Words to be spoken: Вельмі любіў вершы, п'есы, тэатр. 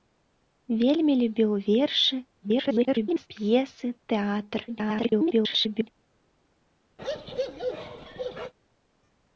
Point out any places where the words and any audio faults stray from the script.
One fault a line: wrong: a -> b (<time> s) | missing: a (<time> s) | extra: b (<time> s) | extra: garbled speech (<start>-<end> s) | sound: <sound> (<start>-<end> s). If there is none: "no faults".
extra: garbled speech (2.4-3.3 s)
extra: garbled speech (4.7-5.9 s)
sound: bark (7.0-8.5 s)